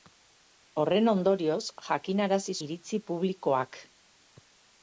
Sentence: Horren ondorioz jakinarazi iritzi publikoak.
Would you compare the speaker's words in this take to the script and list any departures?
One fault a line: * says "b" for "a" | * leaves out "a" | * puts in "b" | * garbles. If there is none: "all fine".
all fine